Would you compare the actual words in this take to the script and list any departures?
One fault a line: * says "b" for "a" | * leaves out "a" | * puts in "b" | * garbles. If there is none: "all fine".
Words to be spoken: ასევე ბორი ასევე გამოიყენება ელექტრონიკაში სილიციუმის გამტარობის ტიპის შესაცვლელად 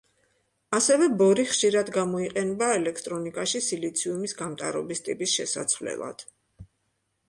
* says "ხშირად" for "ასევე"